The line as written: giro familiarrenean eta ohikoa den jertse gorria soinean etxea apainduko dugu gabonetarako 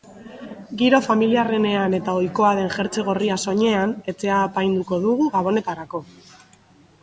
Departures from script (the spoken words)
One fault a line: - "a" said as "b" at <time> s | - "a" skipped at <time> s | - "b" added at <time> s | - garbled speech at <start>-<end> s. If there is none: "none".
none